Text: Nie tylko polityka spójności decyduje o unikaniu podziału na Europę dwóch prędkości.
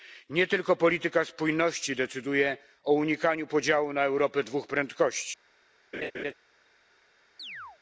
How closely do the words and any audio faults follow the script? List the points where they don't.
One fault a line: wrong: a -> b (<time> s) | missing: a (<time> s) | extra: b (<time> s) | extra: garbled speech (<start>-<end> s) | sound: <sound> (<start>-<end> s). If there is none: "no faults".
sound: laugh (5.9-6.3 s)
sound: chirp (7.4-7.8 s)